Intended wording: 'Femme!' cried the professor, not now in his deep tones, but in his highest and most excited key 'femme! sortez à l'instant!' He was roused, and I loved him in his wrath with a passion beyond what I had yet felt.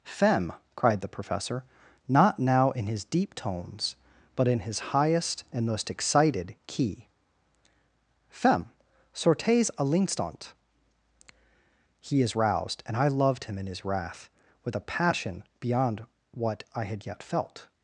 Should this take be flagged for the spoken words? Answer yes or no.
yes